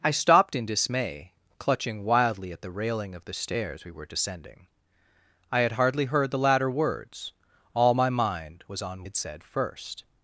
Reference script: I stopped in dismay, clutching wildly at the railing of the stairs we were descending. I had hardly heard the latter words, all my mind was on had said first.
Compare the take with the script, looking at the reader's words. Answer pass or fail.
pass